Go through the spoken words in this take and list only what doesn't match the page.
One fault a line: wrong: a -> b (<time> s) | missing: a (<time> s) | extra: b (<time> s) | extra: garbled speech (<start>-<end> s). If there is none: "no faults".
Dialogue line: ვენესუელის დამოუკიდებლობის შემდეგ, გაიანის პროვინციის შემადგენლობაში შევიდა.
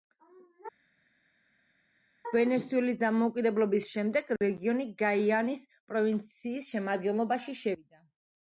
extra: რეგიონი (4.4 s)